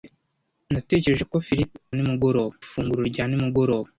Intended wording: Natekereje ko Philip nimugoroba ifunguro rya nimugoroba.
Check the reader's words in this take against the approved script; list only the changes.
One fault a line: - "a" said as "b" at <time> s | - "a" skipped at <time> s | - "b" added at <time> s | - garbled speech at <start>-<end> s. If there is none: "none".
none